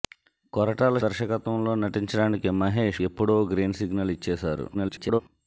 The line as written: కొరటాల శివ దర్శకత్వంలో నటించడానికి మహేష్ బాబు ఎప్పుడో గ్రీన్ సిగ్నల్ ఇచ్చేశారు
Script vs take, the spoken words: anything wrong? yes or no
yes